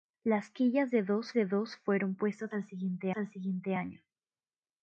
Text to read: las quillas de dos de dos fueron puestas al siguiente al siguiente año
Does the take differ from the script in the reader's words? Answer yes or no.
no